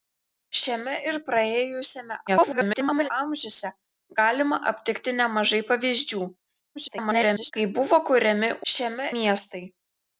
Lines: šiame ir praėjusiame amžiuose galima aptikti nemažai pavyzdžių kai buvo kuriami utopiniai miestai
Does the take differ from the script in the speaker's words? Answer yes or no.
yes